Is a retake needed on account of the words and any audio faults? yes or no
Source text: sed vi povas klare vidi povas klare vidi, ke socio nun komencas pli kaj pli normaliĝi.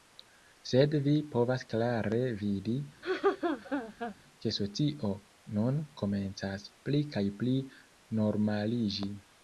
yes